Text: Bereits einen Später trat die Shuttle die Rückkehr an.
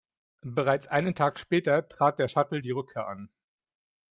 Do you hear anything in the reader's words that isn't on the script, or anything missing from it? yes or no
yes